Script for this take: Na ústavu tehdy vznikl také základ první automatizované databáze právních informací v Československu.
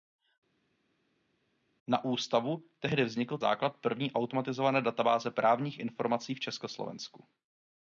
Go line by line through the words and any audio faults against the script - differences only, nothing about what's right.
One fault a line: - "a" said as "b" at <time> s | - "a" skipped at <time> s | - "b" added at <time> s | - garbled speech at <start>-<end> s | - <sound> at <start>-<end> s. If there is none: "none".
- "také" skipped at 3.4 s